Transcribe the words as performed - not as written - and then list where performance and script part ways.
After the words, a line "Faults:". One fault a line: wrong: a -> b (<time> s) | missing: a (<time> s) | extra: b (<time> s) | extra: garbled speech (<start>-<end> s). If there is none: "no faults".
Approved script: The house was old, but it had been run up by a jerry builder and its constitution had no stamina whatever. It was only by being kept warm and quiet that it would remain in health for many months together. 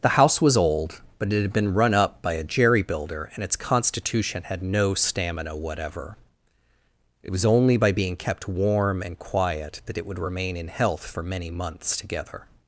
The house was old, but it had been run up by a jerry builder and its constitution had no stamina whatever. It was only by being kept warm and quiet that it would remain in health for many months together.
Faults:
no faults